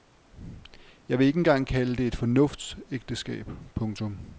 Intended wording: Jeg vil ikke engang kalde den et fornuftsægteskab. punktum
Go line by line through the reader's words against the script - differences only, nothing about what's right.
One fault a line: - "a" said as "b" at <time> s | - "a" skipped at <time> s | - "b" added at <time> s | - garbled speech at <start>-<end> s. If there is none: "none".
- "den" said as "det" at 1.9 s